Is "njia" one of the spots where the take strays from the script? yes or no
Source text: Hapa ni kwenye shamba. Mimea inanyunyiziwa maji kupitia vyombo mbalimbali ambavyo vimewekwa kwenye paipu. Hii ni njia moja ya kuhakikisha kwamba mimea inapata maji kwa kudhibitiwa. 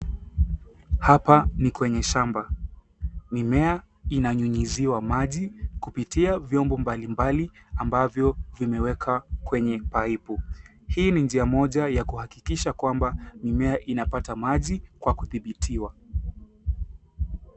no